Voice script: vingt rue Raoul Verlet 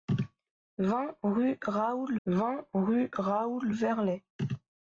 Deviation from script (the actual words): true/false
true